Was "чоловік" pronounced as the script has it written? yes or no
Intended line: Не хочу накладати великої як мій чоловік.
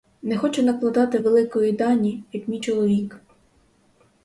yes